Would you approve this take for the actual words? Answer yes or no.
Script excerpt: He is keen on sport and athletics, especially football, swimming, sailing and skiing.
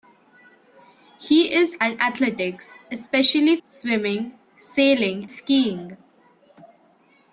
no